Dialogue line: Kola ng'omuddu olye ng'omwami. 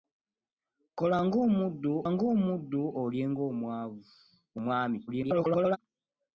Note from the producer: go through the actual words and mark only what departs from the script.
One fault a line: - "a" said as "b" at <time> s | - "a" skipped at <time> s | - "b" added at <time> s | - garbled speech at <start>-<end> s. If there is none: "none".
- "ng'omuddu" added at 2.1 s
- garbled speech at 5.1-5.8 s